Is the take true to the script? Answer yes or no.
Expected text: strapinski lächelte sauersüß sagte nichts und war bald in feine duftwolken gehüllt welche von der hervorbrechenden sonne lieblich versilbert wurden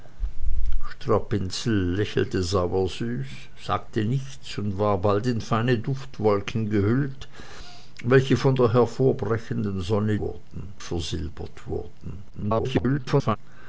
no